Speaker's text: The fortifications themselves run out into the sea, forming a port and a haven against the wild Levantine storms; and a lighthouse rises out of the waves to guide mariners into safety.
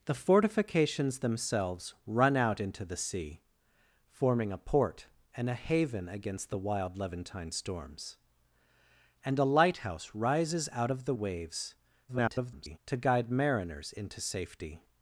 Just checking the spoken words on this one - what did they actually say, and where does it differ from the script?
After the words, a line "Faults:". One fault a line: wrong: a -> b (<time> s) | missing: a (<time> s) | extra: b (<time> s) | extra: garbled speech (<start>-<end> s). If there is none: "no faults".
The fortifications themselves run out into the sea, forming a port and a haven against the wild Levantine storms; and a lighthouse rises out of the waves [garbled] to guide mariners into safety.
Faults:
extra: garbled speech (12.1-12.8 s)